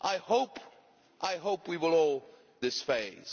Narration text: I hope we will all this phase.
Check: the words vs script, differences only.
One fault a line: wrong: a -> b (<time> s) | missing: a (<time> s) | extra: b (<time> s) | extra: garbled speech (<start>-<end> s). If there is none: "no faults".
no faults